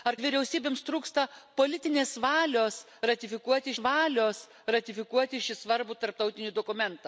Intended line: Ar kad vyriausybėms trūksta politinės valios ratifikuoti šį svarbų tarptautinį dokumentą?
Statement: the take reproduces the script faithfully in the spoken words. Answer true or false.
false